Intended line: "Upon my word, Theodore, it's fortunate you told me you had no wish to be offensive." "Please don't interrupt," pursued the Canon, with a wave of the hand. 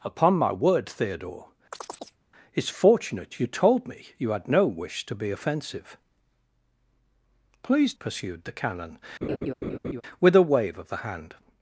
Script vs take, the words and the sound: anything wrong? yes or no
yes